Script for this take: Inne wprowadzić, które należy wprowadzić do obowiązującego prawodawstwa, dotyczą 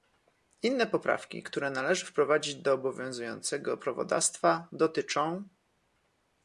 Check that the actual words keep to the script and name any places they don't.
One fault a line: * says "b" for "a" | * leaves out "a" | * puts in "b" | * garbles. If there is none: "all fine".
* says "poprawki" for "wprowadzić"